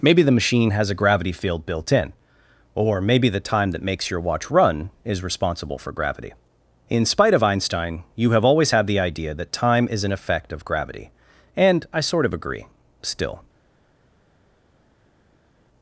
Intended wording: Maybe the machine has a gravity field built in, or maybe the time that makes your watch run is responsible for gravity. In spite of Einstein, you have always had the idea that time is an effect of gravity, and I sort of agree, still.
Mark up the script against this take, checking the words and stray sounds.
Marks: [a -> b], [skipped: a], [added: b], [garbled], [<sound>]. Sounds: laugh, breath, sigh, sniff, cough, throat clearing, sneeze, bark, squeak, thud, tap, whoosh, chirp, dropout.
Maybe the machine has a gravity field built in, or maybe the time that makes your watch run is responsible for gravity. In spite of Einstein, you have always had the idea that time is an effect of gravity, and I sort of agree, still.